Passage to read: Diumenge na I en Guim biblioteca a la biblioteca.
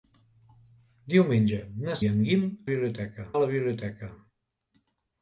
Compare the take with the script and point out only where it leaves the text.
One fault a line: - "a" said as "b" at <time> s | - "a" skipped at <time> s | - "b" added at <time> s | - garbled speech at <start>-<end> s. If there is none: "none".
none